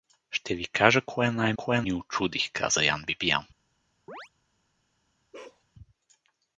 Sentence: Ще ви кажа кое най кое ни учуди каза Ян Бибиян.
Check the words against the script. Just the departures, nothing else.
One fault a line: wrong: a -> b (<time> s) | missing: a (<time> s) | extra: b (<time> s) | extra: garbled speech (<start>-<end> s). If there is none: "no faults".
no faults